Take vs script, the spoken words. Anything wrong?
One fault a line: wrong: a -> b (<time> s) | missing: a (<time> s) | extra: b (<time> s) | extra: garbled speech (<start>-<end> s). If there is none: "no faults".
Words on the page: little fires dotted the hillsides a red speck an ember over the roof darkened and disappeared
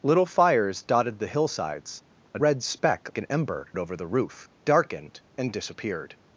no faults